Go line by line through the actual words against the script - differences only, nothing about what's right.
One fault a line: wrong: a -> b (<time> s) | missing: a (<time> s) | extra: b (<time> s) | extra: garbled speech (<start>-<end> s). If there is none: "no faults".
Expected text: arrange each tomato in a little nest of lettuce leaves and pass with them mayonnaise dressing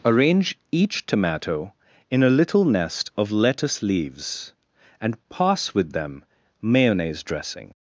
no faults